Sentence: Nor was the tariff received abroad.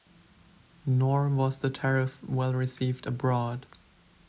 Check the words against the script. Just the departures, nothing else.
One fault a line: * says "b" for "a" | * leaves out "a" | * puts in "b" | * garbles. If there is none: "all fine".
* puts in "well"